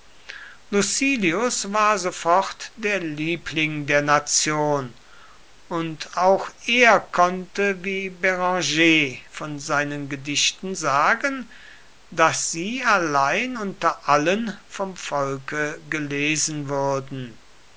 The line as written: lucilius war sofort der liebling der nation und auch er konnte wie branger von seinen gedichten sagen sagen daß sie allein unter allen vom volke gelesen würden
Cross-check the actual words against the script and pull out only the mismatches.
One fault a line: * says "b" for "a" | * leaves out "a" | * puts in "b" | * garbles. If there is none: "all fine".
* leaves out "sagen"